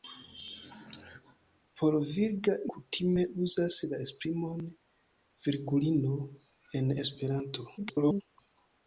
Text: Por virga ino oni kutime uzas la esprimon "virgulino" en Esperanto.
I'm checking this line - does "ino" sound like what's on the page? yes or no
no